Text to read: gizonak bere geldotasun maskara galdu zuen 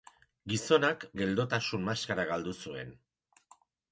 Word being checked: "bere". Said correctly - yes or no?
no